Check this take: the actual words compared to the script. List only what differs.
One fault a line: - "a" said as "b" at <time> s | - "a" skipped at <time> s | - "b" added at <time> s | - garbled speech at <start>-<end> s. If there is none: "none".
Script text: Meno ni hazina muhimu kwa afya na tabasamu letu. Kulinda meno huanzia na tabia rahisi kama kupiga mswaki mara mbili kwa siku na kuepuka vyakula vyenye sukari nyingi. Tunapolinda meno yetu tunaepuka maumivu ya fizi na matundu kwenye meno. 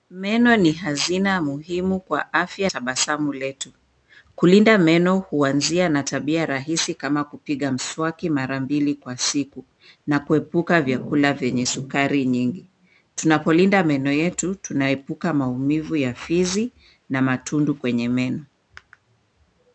- "na" skipped at 2.7 s